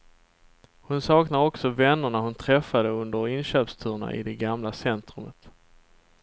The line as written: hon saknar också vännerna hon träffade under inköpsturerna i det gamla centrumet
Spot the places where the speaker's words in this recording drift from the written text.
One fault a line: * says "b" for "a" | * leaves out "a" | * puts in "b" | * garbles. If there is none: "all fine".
all fine